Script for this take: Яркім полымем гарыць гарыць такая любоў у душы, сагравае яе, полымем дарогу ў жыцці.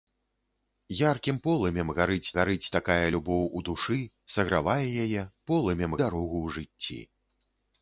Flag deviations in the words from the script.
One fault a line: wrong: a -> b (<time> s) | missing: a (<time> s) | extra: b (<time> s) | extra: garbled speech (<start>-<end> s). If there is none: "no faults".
no faults